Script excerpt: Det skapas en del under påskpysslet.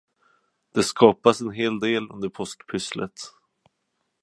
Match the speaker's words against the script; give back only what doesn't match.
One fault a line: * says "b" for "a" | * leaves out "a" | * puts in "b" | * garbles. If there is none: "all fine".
* puts in "hel"